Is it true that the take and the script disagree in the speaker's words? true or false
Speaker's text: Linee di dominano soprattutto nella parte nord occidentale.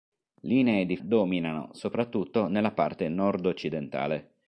false